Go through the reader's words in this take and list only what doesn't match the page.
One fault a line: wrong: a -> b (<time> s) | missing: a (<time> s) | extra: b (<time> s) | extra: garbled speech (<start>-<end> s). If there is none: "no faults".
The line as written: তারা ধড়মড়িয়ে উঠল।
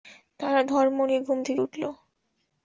extra: ঘুম থেকে (1.2 s)